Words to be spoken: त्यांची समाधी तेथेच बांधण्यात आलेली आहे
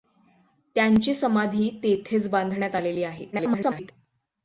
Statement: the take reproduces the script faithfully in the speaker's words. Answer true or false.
false